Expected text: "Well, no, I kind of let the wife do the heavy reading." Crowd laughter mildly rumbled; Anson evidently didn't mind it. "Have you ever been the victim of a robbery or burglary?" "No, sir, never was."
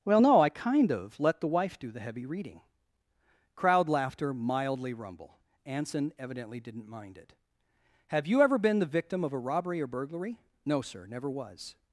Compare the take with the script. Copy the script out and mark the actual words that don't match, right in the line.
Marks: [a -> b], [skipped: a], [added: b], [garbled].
"Well, no, I kind of let the wife do the heavy reading." Crowd laughter mildly [rumbled; -> rumble] Anson evidently didn't mind it. "Have you ever been the victim of a robbery or burglary?" "No, sir, never was."